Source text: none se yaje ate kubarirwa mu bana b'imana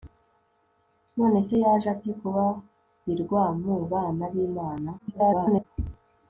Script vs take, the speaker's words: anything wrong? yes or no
yes